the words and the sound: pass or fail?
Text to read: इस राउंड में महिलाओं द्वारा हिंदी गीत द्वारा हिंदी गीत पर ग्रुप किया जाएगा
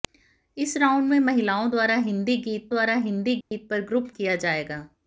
fail